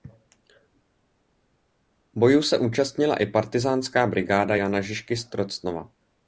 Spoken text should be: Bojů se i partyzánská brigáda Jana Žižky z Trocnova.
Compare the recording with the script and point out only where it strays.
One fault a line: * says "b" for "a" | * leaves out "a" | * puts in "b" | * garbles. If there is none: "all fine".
* puts in "účastnila"